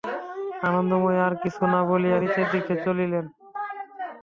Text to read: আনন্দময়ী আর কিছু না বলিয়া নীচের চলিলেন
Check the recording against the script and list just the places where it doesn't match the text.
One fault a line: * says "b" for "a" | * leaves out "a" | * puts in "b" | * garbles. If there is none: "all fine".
* puts in "দিকে"